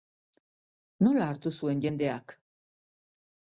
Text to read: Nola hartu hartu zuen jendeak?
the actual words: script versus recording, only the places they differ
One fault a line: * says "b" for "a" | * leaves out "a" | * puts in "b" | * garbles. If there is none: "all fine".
* leaves out "hartu"